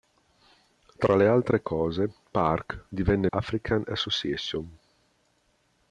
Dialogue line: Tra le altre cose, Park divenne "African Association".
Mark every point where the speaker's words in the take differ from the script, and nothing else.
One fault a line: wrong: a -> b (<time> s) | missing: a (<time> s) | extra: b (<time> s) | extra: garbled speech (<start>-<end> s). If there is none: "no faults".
no faults